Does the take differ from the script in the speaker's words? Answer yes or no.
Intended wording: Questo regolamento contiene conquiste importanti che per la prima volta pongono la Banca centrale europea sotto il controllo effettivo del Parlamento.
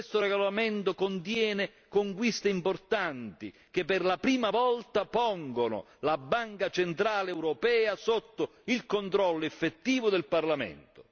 no